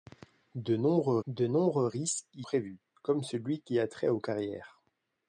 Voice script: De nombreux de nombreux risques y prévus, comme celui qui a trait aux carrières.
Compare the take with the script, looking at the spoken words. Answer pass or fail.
pass